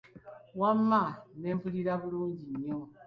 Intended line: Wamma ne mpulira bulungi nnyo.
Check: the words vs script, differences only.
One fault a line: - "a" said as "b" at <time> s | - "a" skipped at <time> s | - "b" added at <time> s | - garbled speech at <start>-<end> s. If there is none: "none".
none